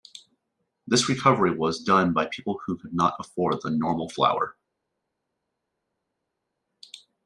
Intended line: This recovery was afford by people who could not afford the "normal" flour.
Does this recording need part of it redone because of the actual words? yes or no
yes